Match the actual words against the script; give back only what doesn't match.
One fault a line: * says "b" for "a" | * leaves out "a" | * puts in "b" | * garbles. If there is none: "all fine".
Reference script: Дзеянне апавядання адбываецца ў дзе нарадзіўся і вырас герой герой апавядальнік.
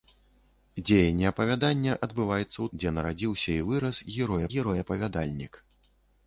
all fine